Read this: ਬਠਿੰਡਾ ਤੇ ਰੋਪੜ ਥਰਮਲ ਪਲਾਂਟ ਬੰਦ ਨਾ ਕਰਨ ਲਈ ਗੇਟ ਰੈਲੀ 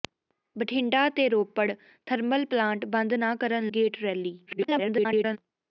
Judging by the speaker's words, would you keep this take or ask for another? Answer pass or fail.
fail